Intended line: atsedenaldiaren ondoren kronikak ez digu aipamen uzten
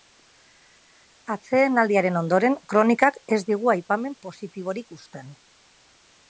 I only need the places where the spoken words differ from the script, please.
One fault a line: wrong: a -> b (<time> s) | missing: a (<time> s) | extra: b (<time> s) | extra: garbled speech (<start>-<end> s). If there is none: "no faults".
extra: positiborik (4.3 s)